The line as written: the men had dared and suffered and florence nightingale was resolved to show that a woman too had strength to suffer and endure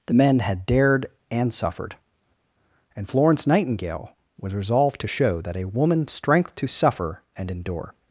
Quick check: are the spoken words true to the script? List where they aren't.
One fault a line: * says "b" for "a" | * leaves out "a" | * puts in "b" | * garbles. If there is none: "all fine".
* leaves out "too had"